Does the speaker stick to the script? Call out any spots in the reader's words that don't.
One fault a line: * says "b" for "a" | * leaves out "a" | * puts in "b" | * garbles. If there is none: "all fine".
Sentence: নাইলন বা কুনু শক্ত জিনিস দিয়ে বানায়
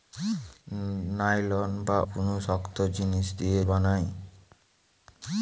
all fine